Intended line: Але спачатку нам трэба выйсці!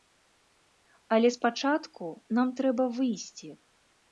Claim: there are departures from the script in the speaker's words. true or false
false